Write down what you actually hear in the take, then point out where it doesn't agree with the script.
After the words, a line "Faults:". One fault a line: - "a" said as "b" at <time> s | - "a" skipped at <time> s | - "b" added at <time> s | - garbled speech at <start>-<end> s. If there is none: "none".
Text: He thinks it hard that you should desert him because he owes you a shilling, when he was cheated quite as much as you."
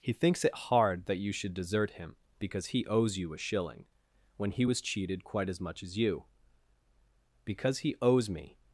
He thinks it hard that you should desert him because he owes you a shilling, when he was cheated quite as much as you." "Because he owes me
Faults:
- "Because he owes me" added at 7.4 s